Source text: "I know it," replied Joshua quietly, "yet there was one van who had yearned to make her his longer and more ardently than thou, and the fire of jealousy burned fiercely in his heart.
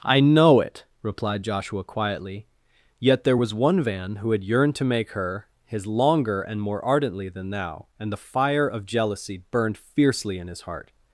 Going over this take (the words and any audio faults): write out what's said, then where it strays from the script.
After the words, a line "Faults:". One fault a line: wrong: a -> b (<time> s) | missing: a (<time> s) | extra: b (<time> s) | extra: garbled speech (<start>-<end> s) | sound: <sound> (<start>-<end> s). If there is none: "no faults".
"I know it," replied Joshua quietly, "yet there was one van who had yearned to make her his longer and more ardently than thou, and the fire of jealousy burned fiercely in his heart.
Faults:
no faults